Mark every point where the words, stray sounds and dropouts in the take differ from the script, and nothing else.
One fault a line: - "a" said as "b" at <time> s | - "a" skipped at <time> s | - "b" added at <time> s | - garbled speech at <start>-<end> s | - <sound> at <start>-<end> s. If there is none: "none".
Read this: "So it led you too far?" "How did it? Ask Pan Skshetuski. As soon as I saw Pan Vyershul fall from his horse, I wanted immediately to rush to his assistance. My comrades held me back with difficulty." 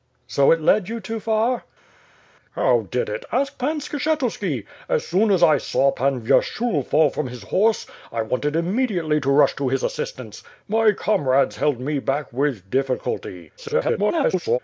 - garbled speech at 13.6-14.6 s